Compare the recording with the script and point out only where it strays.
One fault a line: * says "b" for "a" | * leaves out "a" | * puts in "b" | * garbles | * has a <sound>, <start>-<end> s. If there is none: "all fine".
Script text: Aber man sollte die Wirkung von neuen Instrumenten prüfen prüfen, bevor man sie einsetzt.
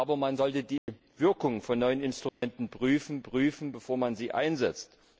* has a dropout, 0.8-0.9 s
* has a dropout, 2.3-2.4 s